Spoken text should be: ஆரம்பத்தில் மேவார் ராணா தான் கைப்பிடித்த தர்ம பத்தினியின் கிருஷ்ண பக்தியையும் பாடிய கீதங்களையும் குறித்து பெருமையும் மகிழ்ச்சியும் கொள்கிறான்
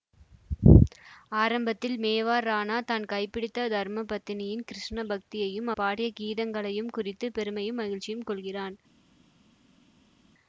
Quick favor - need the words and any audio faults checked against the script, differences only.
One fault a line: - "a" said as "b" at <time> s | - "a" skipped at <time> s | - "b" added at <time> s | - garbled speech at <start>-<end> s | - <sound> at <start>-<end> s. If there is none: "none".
none